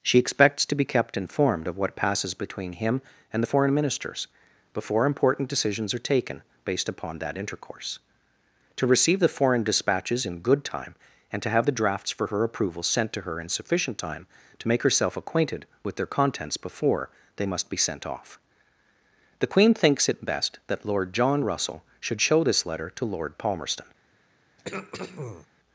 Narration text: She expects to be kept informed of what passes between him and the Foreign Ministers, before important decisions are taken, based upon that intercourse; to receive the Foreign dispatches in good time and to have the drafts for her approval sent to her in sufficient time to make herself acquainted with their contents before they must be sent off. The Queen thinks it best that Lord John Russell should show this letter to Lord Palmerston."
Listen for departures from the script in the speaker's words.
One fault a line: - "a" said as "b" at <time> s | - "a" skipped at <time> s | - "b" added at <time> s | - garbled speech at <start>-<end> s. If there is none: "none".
none